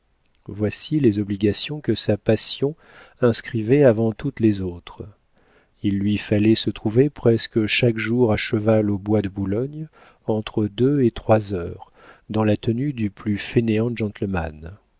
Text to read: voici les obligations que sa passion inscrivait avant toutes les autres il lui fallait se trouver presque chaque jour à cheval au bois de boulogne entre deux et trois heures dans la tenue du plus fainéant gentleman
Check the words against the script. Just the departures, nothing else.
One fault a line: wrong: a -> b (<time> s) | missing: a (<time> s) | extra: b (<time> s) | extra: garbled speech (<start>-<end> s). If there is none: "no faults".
no faults